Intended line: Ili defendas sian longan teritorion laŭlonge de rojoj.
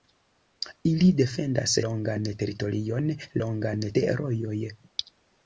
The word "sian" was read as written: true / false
false